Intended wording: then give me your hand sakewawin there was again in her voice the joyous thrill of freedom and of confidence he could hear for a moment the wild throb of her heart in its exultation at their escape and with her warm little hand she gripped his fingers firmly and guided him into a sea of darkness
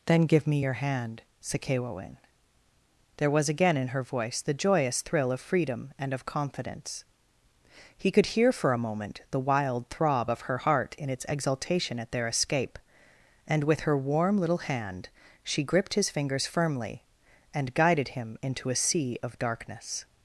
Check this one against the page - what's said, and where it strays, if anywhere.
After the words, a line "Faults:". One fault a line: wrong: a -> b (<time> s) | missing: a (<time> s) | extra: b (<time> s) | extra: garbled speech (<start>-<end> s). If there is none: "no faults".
then give me your hand sakewawin there was again in her voice the joyous thrill of freedom and of confidence he could hear for a moment the wild throb of her heart in its exultation at their escape and with her warm little hand she gripped his fingers firmly and guided him into a sea of darkness
Faults:
no faults